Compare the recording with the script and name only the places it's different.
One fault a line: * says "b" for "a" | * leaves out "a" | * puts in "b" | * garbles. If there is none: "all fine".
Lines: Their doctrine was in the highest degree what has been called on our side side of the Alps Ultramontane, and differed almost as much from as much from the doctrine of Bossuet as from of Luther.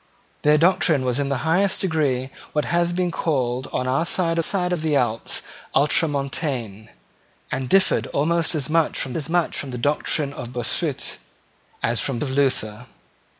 all fine